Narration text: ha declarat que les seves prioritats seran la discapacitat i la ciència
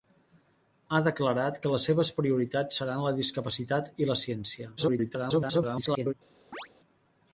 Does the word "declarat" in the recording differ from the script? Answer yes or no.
no